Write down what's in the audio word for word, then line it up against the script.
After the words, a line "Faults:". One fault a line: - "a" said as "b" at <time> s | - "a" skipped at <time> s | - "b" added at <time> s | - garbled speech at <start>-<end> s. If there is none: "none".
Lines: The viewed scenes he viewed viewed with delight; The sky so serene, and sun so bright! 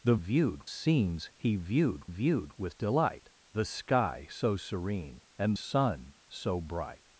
The viewed scenes he viewed viewed with delight; The sky so serene, and sun so bright!
Faults:
none